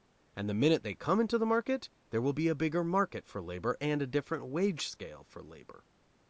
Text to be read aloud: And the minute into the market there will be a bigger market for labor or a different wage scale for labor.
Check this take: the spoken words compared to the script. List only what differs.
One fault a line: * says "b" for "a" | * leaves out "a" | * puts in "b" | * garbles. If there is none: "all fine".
* puts in "they come"
* says "and" for "or"